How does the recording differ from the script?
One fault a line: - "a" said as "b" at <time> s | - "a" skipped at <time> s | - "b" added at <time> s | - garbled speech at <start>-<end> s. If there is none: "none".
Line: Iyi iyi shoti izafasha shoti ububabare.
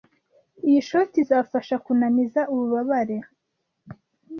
- "iyi" skipped at 0.8 s
- "shoti" said as "kunaniza" at 1.8 s